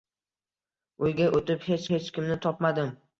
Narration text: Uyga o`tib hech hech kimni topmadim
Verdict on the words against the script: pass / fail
pass